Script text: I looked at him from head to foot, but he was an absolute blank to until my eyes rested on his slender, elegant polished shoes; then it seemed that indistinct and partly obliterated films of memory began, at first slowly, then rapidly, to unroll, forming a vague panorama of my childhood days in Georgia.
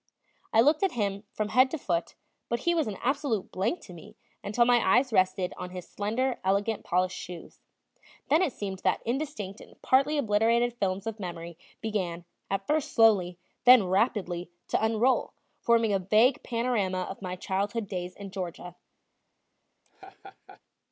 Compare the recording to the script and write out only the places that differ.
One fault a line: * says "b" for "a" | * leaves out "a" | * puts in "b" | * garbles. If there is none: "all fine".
* puts in "me"